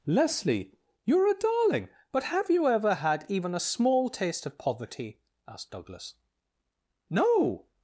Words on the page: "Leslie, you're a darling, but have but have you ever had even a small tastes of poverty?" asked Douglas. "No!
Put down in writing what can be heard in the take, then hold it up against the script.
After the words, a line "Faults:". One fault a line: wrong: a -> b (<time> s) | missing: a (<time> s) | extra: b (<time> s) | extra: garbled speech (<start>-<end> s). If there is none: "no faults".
"Leslie, you're a darling, but have you ever had even a small taste of poverty?" asked Douglas. "No!
Faults:
missing: but have (2.5 s)
wrong: tastes -> taste (4.1 s)